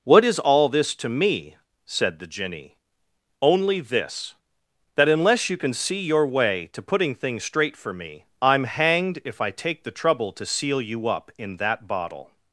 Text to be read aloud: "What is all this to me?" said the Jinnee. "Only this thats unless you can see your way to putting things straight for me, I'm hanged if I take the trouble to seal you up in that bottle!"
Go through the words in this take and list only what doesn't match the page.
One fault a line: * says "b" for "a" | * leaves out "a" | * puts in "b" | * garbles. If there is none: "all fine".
* says "that" for "thats"